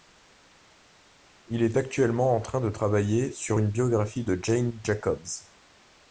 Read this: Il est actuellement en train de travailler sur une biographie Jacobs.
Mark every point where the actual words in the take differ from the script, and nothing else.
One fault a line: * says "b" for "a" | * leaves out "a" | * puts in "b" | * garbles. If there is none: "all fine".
* puts in "de Jane"